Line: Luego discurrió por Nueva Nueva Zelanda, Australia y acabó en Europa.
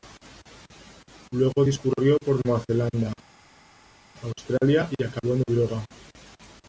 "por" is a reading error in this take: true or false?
false